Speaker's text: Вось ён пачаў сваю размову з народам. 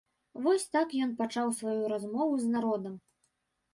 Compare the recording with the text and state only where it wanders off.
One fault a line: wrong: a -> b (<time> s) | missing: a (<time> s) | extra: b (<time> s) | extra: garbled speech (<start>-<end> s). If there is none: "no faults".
extra: так (0.8 s)